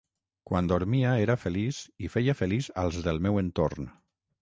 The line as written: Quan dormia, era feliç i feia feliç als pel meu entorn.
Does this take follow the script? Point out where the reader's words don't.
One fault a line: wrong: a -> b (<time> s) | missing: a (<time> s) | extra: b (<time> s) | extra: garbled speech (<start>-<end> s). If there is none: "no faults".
wrong: pel -> del (3.1 s)